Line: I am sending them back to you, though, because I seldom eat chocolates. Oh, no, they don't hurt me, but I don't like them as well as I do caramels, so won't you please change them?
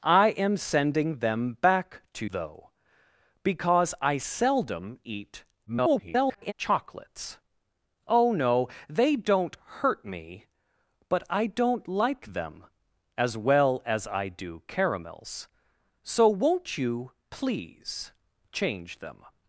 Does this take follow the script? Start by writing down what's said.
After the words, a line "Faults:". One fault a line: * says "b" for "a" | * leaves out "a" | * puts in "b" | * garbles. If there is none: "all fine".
I am sending them back to though, because I seldom eat [garbled] chocolates. Oh, no, they don't hurt me, but I don't like them as well as I do caramels, so won't you please change them?
Faults:
* leaves out "you"
* garbles